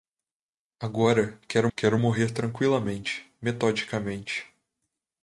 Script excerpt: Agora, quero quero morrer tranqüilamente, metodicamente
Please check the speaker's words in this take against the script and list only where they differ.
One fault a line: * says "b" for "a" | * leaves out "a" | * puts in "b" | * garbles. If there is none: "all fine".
all fine